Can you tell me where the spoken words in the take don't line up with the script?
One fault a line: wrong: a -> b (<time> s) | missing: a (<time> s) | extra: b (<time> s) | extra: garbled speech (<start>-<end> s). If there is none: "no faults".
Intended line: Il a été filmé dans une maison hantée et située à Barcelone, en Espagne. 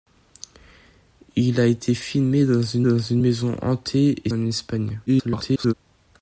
extra: dans une (2.8 s)
missing: située à Barcelone (4.3 s)
extra: garbled speech (5.1-5.7 s)